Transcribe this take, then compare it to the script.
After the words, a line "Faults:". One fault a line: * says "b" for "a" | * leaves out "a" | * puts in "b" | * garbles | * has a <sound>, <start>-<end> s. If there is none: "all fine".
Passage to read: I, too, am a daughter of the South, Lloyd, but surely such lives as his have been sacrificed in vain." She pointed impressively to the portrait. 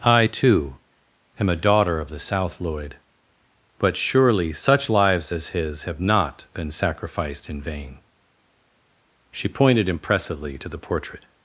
I, too, am a daughter of the South, Lloyd, but surely such lives as his have not been sacrificed in vain." She pointed impressively to the portrait.
Faults:
* puts in "not"